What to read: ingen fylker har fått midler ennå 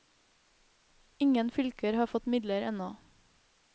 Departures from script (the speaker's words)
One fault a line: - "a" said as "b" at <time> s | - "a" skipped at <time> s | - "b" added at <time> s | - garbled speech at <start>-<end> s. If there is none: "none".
none